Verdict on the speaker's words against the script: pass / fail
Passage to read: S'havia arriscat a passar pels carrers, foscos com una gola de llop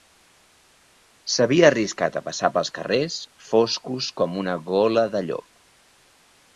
pass